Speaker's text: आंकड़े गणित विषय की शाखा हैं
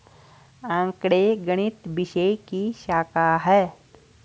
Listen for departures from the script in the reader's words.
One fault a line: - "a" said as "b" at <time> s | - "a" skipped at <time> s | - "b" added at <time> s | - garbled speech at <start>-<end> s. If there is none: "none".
none